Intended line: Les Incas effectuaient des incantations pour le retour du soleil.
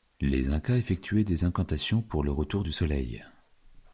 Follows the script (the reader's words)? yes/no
yes